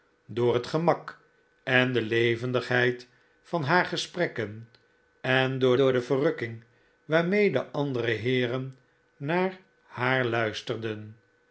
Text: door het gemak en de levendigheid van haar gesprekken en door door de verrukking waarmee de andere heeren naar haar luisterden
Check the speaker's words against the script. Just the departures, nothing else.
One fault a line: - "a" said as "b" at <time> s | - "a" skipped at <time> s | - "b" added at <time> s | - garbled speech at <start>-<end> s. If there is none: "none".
none